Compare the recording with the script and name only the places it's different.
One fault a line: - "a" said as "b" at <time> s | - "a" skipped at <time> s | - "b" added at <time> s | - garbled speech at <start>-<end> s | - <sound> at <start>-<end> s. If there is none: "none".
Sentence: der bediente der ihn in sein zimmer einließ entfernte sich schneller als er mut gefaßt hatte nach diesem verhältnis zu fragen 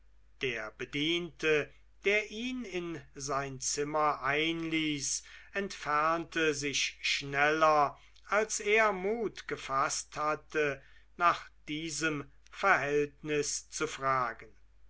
none